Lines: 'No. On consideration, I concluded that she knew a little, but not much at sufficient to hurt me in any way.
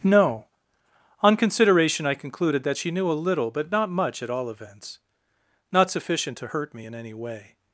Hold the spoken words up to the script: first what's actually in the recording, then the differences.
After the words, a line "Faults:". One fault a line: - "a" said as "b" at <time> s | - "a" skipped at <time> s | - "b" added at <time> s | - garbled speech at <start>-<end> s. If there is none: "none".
'No. On consideration, I concluded that she knew a little, but not much at all events, not sufficient to hurt me in any way.
Faults:
- "all events not" added at 4.3 s